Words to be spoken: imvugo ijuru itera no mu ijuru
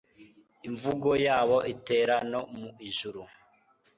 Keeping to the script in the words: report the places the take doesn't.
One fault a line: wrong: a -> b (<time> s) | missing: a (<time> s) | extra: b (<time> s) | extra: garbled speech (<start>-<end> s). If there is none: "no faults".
wrong: ijuru -> yabo (1.2 s)